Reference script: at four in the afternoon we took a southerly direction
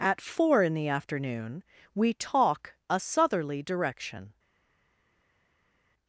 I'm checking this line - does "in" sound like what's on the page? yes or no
yes